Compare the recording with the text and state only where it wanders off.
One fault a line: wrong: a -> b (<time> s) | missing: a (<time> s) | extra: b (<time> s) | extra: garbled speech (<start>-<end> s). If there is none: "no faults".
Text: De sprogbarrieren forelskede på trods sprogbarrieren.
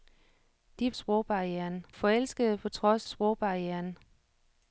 no faults